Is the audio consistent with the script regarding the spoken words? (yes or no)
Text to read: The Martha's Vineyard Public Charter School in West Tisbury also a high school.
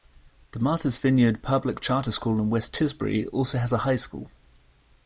no